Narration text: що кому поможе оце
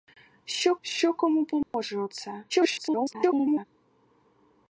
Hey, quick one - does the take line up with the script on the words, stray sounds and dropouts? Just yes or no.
no